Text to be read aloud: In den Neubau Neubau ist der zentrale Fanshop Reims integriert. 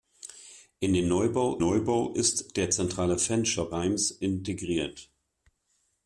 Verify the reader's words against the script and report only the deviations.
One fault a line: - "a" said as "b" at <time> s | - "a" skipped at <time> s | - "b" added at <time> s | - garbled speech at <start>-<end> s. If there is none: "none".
none